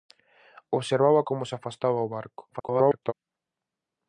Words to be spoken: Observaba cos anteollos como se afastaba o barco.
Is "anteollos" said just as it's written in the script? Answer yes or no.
no